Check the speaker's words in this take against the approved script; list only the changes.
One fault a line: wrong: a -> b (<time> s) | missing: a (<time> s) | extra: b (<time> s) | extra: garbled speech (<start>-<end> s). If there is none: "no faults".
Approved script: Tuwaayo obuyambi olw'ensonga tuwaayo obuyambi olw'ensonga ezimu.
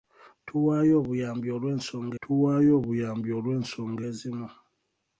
no faults